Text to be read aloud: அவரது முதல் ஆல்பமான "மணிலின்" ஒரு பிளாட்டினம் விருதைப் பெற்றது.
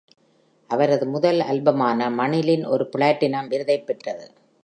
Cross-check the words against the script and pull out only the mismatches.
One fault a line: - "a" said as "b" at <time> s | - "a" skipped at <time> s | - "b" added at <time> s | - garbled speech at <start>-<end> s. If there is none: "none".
none